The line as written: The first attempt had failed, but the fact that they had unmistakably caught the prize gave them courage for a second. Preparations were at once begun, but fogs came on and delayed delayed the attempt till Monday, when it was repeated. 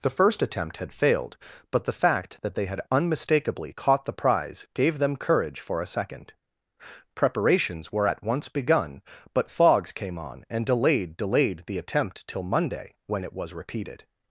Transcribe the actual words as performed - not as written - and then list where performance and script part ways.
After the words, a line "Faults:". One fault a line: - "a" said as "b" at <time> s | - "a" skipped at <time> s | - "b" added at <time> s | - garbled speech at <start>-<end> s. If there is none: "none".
The first attempt had failed, but the fact that they had unmistakably caught the prize gave them courage for a second. Preparations were at once begun, but fogs came on and delayed delayed the attempt till Monday, when it was repeated.
Faults:
none